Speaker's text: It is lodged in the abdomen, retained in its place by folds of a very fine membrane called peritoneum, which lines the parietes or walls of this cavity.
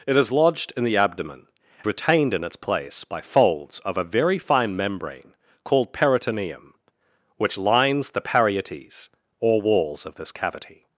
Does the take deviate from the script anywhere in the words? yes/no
no